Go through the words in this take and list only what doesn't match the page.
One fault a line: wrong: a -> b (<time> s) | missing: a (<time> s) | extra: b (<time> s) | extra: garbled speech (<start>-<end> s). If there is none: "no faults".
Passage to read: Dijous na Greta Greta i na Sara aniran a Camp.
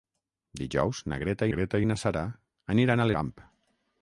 no faults